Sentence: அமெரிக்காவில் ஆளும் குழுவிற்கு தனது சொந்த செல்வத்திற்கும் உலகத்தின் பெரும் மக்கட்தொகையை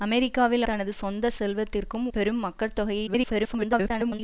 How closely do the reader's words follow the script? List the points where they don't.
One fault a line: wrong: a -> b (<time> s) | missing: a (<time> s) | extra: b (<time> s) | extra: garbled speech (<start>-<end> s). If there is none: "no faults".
missing: ஆளும் குழுவிற்கு (0.7 s)
missing: உலகத்தின் (2.1 s)
extra: garbled speech (3.1-4.2 s)